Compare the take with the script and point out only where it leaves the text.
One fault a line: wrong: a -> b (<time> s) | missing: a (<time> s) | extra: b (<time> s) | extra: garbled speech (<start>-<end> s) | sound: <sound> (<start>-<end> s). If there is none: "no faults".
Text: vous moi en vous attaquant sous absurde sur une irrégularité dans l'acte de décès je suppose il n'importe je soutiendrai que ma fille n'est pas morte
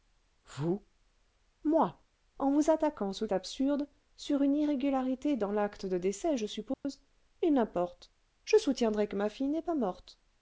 sound: dropout (6.7-6.8 s)